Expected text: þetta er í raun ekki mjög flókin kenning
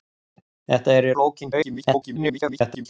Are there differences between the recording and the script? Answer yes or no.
yes